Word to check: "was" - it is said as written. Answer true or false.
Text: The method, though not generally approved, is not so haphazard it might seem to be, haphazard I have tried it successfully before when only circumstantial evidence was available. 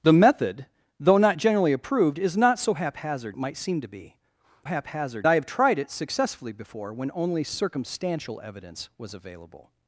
true